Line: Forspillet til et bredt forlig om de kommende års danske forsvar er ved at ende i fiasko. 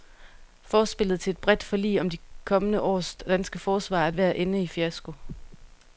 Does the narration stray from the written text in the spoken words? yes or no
no